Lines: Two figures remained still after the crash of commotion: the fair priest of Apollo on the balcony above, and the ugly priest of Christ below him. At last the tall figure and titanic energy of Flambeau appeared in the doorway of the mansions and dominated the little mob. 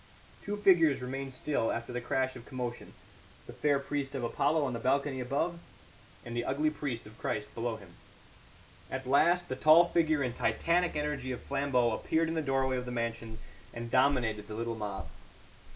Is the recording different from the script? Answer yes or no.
no